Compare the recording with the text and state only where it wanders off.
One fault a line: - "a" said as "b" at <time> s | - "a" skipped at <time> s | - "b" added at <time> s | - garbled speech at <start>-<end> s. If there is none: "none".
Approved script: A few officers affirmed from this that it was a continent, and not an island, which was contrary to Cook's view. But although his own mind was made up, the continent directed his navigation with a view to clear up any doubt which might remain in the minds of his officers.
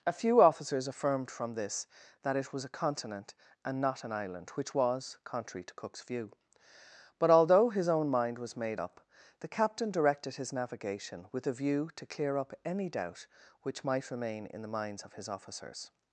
- "continent" said as "captain" at 9.5 s